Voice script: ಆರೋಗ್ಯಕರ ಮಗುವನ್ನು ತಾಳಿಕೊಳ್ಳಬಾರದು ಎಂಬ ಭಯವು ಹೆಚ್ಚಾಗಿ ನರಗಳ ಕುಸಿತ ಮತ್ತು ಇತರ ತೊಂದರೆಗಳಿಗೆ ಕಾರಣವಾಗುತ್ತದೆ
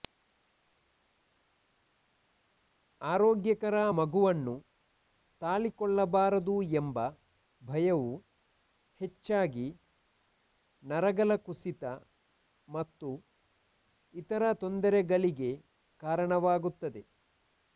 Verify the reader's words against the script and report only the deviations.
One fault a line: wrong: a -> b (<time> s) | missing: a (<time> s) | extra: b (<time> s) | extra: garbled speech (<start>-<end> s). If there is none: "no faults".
no faults